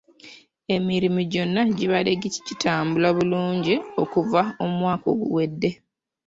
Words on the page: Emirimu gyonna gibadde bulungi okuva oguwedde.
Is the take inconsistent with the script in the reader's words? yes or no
yes